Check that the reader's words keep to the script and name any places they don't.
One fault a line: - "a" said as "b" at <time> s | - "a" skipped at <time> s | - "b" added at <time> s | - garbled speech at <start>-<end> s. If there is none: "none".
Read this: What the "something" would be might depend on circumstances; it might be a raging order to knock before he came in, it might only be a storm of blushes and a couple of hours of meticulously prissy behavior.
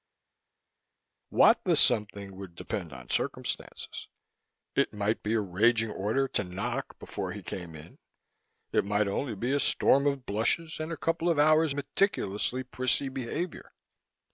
- "be might" skipped at 2.6 s
- "of" skipped at 11.7 s